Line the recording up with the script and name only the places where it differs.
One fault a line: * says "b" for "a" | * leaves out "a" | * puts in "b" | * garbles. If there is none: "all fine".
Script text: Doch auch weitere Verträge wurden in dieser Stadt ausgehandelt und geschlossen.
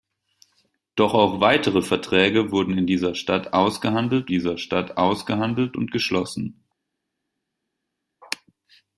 * puts in "dieser Stadt ausgehandelt"